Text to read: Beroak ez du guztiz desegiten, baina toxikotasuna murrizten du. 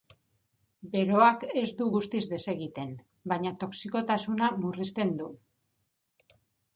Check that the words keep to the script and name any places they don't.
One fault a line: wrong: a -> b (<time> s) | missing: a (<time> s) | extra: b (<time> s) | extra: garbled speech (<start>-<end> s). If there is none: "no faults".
no faults